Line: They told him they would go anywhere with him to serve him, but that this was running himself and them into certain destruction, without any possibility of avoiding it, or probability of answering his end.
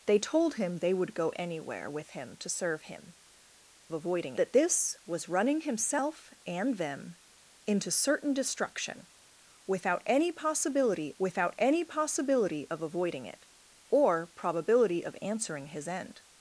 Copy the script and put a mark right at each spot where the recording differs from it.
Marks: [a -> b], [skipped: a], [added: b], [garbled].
They told him they would go anywhere with him to serve him, [but -> avoiding] that this was running himself and them into certain destruction, without any possibility [added: without any possibility] of avoiding it, or probability of answering his end.